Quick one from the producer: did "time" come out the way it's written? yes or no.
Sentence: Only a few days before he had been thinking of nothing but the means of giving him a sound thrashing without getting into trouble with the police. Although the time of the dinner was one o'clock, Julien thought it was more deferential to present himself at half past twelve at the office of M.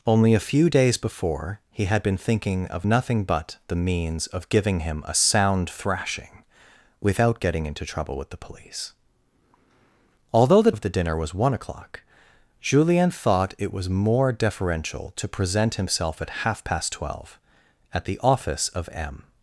no